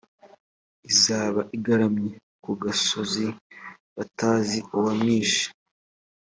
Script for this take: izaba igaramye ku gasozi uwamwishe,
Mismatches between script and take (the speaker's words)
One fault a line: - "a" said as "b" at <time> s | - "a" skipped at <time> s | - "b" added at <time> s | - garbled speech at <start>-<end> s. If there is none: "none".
- "batazi" added at 4.0 s